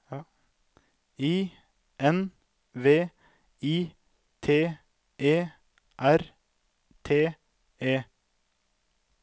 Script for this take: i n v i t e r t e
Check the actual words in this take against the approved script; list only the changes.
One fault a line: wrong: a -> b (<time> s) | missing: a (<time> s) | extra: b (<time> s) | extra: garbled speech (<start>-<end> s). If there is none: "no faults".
no faults